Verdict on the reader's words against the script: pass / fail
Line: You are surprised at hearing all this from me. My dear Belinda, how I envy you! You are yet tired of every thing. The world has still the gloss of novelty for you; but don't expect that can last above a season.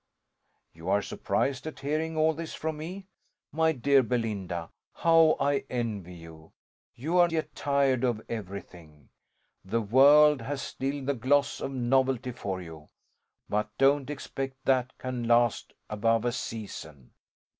pass